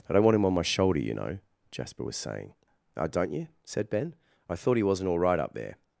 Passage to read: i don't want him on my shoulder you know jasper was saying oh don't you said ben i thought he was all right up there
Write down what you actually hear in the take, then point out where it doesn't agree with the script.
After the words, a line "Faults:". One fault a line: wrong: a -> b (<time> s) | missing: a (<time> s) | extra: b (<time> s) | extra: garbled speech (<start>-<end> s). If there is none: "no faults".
i don't want him on my shoulder you know jasper was saying oh don't you said ben i thought he wasn't all right up there
Faults:
wrong: was -> wasn't (4.8 s)